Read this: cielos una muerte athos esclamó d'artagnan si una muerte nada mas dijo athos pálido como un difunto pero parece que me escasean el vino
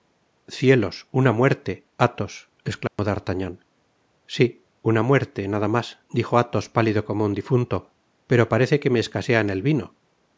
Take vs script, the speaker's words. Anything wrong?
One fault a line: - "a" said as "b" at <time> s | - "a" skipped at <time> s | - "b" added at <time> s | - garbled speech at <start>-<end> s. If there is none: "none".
none